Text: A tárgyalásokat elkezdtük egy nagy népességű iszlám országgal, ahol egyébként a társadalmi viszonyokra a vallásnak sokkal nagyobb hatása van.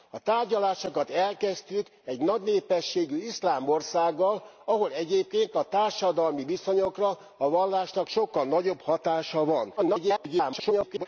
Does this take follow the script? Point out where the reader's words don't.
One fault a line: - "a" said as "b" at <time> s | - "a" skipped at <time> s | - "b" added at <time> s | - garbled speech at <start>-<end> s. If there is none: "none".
- garbled speech at 9.8-11.1 s